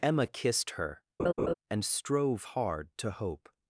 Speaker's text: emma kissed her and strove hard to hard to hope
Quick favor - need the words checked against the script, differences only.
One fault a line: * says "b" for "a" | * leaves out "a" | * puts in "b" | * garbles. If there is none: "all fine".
* leaves out "hard to"